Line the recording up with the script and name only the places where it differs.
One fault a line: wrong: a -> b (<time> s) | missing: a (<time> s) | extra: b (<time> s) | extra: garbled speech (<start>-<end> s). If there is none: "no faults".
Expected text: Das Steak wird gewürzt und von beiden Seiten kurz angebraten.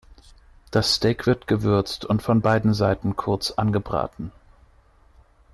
no faults